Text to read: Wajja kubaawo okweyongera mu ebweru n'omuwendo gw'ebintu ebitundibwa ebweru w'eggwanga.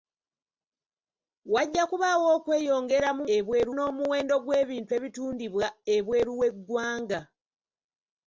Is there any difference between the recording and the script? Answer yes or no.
no